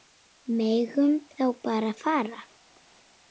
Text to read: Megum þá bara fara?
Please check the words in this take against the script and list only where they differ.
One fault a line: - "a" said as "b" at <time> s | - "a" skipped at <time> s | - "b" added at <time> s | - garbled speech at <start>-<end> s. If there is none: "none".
none